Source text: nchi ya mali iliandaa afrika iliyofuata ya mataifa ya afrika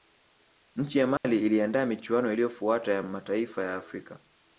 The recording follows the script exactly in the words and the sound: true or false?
false